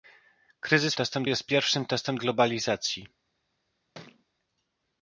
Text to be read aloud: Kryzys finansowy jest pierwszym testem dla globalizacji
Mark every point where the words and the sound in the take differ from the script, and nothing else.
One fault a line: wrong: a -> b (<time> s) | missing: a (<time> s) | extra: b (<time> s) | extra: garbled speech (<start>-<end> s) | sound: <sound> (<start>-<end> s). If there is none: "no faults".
wrong: finansowy -> testem (0.9 s)
missing: dla (2.2 s)
sound: thud (3.9-4.2 s)